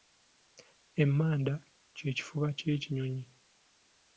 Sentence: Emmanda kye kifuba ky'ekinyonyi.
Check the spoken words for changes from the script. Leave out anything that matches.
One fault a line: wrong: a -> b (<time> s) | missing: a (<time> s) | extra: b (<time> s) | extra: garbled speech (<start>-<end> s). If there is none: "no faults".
no faults